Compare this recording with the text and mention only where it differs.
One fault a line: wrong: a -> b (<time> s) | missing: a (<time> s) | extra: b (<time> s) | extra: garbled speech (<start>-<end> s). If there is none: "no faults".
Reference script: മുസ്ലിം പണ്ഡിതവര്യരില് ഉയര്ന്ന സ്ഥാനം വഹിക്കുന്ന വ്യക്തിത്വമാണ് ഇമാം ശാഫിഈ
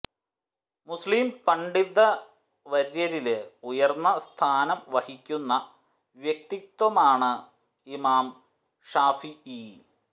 no faults